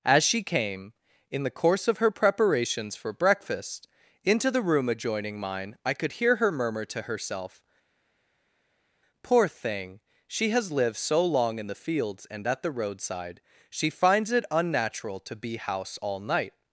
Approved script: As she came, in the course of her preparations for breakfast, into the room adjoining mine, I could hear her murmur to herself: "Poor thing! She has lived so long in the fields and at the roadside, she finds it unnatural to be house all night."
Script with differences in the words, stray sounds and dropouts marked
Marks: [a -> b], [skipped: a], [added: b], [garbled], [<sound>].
As she came, in the course of her preparations for breakfast, into the room adjoining mine, I could hear her murmur to herself: "Poor thing! She has lived so long in the fields and at the roadside, she finds it unnatural to be house all night."